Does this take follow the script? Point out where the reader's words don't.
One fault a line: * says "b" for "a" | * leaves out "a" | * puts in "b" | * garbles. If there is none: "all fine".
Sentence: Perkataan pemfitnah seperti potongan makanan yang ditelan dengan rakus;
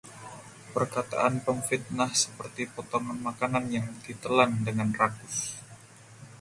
all fine